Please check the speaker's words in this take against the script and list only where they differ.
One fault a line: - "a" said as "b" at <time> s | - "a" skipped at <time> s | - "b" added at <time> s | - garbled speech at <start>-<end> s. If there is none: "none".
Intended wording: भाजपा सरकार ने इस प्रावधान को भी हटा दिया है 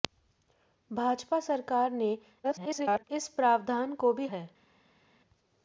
- garbled speech at 2.4-3.0 s
- "हटा दिया" skipped at 4.3 s